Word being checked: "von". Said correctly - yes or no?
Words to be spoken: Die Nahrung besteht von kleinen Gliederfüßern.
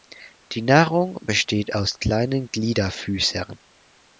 no